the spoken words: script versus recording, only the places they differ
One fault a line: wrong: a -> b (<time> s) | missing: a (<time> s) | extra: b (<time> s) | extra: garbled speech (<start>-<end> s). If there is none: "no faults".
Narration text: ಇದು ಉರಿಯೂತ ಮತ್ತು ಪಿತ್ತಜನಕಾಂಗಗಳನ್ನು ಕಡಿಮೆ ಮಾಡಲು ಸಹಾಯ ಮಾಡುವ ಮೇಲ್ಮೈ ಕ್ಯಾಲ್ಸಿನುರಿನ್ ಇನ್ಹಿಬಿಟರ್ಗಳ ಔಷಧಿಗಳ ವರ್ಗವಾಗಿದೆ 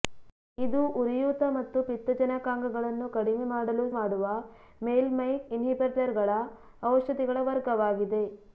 missing: ಸಹಾಯ (3.9 s)
missing: ಕ್ಯಾಲ್ಸಿನುರಿನ್ (5.3 s)